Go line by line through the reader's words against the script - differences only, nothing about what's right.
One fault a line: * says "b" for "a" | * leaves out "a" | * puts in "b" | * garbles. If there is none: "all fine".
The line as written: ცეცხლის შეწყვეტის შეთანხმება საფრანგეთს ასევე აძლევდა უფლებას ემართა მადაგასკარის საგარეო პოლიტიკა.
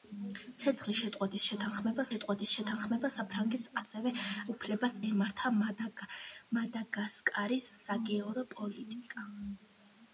* puts in "შეწყვეტის შეთანხმება"
* leaves out "აძლევდა"